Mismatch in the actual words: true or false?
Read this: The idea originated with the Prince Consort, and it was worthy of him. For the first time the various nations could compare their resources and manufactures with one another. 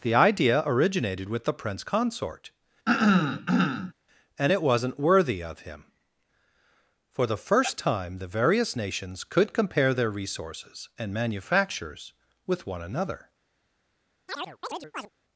true